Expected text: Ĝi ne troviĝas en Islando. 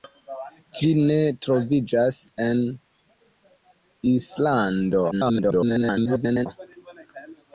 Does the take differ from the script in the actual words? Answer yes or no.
yes